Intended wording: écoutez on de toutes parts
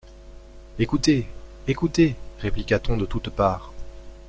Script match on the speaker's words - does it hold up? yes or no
no